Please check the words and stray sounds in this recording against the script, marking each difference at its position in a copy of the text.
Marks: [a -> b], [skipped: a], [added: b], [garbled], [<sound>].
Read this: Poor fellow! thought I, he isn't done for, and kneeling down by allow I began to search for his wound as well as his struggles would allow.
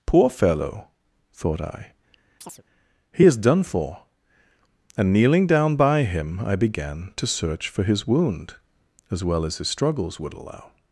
Poor fellow! thought I, [chirp] he [isn't -> is] done for, and kneeling down by [allow -> him] I began to search for his wound as well as his struggles would allow.